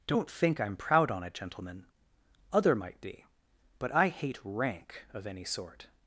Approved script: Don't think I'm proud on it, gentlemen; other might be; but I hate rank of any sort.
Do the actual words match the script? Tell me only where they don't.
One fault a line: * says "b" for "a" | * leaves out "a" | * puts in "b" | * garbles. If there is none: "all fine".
all fine